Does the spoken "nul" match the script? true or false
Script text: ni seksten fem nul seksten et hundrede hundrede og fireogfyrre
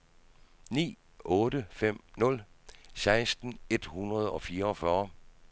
true